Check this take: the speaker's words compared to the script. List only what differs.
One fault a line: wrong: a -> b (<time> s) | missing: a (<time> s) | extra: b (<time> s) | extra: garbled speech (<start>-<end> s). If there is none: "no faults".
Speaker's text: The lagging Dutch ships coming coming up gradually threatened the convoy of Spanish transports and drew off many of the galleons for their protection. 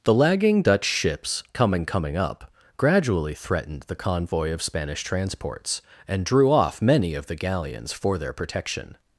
no faults